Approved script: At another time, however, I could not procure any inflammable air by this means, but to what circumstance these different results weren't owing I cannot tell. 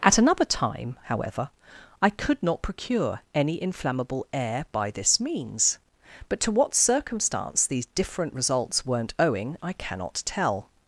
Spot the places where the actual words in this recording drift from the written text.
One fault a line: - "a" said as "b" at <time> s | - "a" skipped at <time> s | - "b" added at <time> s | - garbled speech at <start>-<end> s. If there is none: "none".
none